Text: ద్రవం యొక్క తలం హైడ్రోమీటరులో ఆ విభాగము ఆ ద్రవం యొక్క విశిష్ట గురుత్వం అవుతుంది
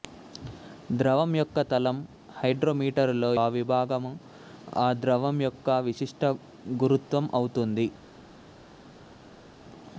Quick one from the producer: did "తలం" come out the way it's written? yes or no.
yes